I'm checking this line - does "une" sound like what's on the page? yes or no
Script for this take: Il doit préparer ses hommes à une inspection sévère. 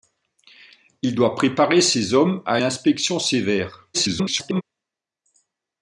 no